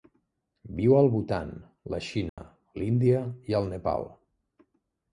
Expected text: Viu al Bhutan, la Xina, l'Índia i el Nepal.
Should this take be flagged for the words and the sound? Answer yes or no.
yes